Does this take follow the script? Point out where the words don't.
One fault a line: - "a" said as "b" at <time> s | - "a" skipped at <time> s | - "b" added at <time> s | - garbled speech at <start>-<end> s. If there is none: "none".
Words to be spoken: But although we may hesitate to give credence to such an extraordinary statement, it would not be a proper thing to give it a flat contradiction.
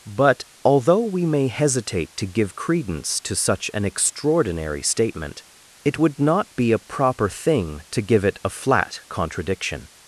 none